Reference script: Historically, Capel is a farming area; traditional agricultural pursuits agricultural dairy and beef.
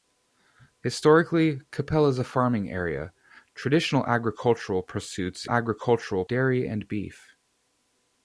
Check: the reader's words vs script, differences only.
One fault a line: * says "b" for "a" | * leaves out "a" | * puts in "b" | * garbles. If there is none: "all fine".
all fine